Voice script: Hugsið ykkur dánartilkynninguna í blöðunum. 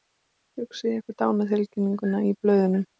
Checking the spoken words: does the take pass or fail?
pass